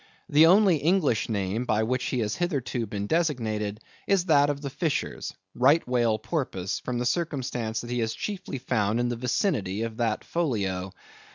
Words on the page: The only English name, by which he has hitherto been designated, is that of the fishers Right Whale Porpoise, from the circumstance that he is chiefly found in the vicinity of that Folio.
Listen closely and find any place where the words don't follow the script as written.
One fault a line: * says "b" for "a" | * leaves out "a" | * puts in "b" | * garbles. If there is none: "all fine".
all fine